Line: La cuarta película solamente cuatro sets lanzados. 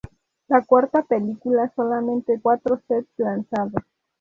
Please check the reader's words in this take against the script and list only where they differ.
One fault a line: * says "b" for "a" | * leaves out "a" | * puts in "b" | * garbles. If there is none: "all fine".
all fine